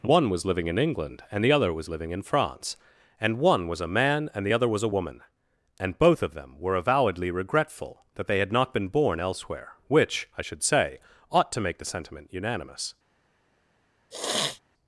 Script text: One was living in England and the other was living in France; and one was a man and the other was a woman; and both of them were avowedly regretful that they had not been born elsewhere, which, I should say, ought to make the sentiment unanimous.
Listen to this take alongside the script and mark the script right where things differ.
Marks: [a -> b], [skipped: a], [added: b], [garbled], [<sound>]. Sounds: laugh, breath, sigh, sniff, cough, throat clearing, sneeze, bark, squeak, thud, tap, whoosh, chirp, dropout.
One was living in England and the other was living in France; and one was a man and the other was a woman; and both of them were avowedly regretful that they had not been born elsewhere, which, I should say, ought to make the sentiment unanimous. [sniff]